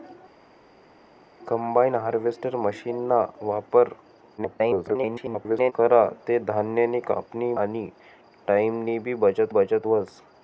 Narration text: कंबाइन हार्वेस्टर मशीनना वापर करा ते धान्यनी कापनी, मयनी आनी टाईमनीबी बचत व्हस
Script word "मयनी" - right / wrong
wrong